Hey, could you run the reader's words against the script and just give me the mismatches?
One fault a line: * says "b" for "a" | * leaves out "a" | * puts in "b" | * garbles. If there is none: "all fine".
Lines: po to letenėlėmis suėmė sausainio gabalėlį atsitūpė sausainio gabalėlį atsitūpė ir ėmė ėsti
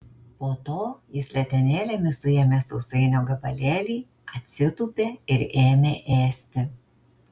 * puts in "jis"
* leaves out "sausainio gabalėlį atsitūpė"